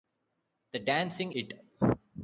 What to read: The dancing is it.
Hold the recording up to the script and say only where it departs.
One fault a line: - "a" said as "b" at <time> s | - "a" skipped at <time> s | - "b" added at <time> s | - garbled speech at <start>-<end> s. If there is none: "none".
- "is" skipped at 1.3 s